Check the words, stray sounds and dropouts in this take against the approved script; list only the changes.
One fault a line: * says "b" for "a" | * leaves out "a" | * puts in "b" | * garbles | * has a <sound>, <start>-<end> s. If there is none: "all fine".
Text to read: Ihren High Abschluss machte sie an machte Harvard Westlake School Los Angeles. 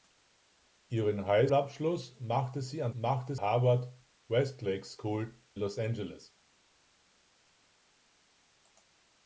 all fine